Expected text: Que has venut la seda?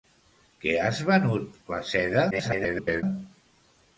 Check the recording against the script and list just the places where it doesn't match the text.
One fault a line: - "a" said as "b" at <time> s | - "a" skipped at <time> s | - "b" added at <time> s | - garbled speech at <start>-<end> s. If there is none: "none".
- garbled speech at 2.3-3.0 s